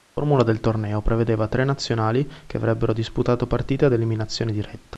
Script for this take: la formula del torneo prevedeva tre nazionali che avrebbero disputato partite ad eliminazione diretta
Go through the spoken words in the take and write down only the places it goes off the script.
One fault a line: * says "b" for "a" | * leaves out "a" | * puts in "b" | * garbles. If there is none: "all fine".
all fine